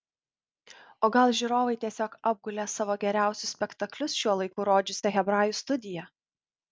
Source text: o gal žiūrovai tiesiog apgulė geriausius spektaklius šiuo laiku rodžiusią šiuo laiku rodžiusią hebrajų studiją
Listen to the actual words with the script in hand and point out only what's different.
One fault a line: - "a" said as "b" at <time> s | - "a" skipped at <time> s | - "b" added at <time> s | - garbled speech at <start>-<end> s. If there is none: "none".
- "savo" added at 2.8 s
- "šiuo laiku rodžiusią" skipped at 5.1 s